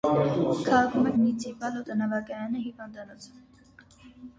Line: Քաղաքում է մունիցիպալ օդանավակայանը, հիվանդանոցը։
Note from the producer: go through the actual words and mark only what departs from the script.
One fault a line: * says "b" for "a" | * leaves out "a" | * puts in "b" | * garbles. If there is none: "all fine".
all fine